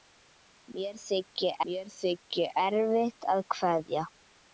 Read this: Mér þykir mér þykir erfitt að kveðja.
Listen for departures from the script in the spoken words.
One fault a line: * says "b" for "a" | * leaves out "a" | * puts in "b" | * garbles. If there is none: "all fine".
all fine